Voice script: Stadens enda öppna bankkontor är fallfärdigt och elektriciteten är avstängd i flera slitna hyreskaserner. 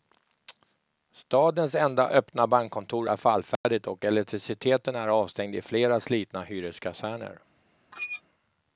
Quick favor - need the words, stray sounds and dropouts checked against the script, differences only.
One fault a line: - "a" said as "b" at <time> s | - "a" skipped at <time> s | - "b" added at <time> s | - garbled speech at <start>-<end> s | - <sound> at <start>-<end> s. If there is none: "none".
- dropout at 3.6-3.6 s
- squeak at 7.9-8.2 s